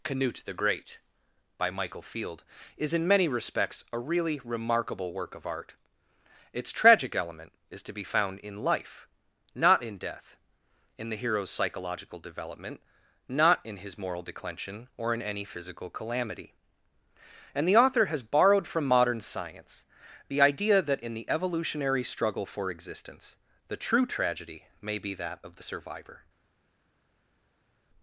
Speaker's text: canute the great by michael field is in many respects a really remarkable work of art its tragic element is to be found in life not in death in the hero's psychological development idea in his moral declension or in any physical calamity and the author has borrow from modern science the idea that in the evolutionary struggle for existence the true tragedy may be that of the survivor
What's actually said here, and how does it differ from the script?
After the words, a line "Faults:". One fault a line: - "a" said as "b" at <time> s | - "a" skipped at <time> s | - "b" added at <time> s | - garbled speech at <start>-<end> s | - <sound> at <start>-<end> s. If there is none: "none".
canute the great by michael field is in many respects a really remarkable work of art its tragic element is to be found in life not in death in the hero's psychological development not in his moral declension or in any physical calamity and the author has borrowed from modern science the idea that in the evolutionary struggle for existence the true tragedy may be that of the survivor
Faults:
- "idea" said as "not" at 13.3 s
- "borrow" said as "borrowed" at 18.2 s